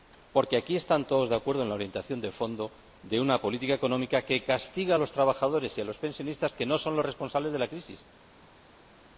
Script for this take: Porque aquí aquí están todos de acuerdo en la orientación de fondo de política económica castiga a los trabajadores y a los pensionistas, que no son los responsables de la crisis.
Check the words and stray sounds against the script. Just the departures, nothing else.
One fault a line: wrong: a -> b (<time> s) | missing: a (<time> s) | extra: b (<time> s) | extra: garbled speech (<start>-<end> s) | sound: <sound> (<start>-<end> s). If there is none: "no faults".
missing: aquí (0.8 s)
extra: una (3.2 s)
extra: que (4.2 s)